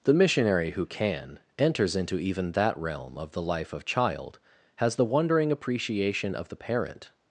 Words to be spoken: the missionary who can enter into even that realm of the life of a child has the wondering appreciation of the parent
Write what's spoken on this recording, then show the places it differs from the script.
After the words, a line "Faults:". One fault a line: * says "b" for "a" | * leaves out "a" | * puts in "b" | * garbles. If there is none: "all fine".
the missionary who can enters into even that realm of the life of child has the wondering appreciation of the parent
Faults:
* says "enters" for "enter"
* leaves out "a"